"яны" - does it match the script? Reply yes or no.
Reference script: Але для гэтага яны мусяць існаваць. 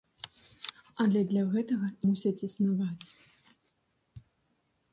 no